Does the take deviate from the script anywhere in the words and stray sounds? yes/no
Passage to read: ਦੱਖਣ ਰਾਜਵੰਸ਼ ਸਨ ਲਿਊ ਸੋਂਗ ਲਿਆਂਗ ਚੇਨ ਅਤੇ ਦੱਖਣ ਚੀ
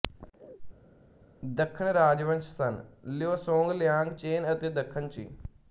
no